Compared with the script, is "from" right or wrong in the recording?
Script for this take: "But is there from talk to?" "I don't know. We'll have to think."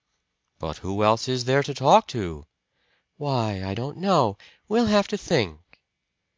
wrong